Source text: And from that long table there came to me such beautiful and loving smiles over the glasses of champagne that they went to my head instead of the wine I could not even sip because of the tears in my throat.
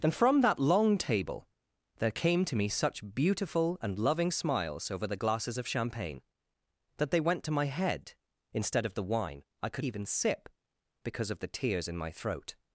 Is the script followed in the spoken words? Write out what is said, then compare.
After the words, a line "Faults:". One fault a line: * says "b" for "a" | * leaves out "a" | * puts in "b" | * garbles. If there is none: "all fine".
And from that long table there came to me such beautiful and loving smiles over the glasses of champagne that they went to my head instead of the wine I could even sip because of the tears in my throat.
Faults:
* leaves out "not"